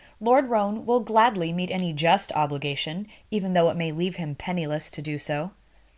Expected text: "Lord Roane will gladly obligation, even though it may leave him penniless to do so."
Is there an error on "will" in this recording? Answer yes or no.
no